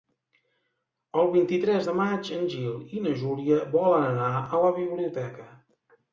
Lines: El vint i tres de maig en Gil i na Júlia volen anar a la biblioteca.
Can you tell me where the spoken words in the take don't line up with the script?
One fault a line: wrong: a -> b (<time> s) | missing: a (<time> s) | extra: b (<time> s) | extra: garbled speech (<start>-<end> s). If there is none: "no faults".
no faults